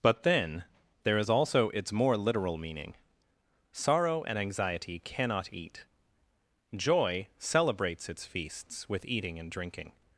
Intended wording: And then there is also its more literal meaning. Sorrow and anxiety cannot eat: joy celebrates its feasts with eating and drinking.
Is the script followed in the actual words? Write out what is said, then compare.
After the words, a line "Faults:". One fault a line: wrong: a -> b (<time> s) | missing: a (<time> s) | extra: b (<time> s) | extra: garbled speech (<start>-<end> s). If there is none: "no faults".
But then there is also its more literal meaning. Sorrow and anxiety cannot eat: joy celebrates its feasts with eating and drinking.
Faults:
wrong: And -> But (0.0 s)